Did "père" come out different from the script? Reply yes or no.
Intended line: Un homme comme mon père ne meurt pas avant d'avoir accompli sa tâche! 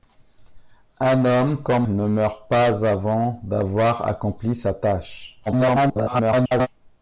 yes